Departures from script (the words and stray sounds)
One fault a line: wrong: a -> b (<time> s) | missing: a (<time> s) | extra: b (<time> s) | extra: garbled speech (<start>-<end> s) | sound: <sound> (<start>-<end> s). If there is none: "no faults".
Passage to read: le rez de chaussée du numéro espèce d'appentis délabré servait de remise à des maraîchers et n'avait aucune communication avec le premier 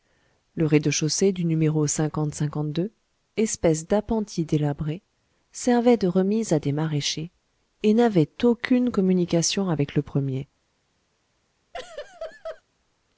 sound: laugh (11.7-12.6 s)